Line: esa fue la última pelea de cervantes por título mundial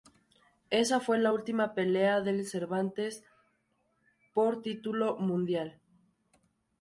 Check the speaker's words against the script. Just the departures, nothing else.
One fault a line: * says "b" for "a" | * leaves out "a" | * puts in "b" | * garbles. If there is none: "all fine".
all fine